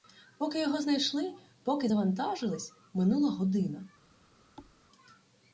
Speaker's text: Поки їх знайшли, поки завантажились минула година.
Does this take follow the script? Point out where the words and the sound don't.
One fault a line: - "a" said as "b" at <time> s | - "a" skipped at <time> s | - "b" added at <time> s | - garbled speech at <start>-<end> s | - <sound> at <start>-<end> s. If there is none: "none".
- "їх" said as "його" at 0.6 s
- thud at 4.6-4.8 s